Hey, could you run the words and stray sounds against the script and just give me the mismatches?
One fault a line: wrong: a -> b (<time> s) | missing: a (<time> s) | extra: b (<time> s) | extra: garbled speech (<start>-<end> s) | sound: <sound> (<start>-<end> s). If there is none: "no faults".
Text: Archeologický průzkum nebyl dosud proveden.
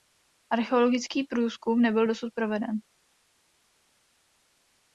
no faults